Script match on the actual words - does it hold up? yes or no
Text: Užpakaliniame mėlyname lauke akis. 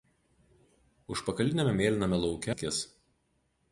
yes